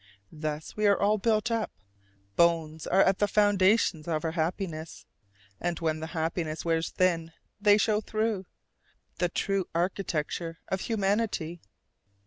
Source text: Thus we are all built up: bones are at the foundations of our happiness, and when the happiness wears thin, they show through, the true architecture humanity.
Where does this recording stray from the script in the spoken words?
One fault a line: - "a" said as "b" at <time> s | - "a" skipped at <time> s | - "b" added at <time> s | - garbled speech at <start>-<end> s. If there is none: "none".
- "of" added at 10.7 s